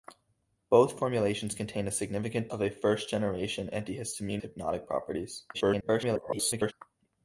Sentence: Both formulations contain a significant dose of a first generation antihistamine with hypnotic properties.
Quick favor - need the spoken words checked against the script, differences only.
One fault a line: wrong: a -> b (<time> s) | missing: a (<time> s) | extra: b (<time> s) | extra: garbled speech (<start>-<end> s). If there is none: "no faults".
missing: dose (2.5 s)
missing: with (4.4 s)
extra: garbled speech (5.5-6.7 s)